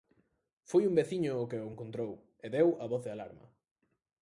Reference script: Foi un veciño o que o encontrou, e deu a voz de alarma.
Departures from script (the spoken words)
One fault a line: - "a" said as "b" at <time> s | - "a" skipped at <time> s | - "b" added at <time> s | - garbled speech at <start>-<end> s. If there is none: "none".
none